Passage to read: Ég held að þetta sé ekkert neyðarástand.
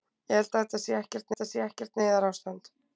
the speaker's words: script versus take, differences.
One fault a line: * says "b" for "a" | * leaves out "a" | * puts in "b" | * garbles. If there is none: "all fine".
* puts in "þetta sé ekkert"